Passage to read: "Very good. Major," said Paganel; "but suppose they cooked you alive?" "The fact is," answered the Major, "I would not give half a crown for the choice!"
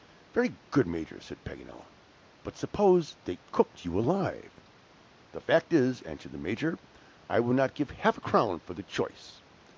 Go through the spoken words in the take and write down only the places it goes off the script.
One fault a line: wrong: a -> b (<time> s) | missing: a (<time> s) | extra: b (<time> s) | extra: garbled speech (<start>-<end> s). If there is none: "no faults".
no faults